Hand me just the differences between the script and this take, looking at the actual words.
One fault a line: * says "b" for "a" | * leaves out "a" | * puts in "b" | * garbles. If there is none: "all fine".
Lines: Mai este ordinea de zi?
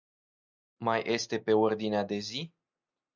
* puts in "pe"